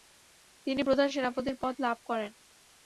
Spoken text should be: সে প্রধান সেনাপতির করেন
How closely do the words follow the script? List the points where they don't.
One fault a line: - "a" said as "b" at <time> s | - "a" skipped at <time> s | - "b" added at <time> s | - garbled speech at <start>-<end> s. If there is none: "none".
- "সে" said as "তিনি" at 0.7 s
- "পদ লাভ" added at 1.6 s